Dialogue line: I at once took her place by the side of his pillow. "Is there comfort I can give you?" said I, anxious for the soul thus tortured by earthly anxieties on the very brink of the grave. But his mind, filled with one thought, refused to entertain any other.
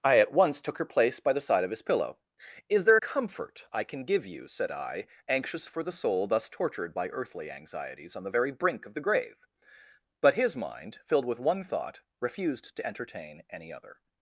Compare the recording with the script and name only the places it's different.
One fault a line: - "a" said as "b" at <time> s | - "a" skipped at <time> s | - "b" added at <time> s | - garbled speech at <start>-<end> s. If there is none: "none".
none